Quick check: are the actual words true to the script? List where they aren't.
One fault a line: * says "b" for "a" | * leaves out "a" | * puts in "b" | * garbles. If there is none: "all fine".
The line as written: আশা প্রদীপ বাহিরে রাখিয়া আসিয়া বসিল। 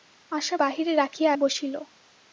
* leaves out "প্রদীপ"
* leaves out "আসিয়া"